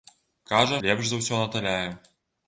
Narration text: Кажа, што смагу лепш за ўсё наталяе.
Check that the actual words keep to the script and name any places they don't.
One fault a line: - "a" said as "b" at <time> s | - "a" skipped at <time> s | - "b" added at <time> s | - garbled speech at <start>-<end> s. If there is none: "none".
- "што смагу" skipped at 0.8 s